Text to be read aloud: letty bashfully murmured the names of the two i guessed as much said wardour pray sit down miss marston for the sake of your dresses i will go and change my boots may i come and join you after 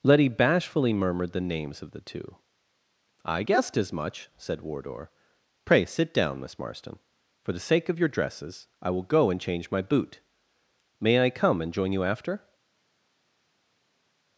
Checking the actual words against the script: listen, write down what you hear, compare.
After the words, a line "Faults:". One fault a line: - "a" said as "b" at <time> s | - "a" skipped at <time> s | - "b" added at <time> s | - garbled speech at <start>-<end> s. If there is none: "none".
letty bashfully murmured the names of the two i guessed as much said wardour pray sit down miss marston for the sake of your dresses i will go and change my boot may i come and join you after
Faults:
- "boots" said as "boot" at 9.8 s